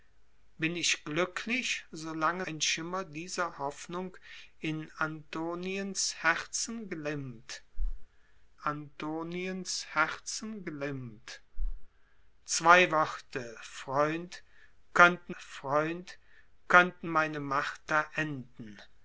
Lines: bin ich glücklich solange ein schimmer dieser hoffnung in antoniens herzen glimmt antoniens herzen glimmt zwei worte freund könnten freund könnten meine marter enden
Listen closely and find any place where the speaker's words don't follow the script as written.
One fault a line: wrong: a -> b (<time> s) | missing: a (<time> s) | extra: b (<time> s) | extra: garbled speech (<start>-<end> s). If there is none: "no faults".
no faults